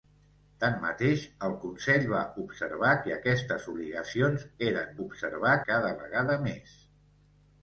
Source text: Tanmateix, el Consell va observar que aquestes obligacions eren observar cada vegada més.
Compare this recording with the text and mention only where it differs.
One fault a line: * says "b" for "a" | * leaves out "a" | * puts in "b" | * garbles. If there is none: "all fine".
all fine